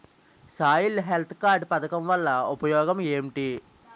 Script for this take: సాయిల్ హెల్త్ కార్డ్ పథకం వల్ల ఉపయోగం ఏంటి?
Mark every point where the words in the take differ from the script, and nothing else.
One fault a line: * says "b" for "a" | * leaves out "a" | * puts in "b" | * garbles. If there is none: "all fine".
all fine